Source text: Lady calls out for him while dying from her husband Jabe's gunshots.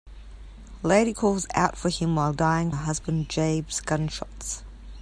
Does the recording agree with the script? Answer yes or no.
no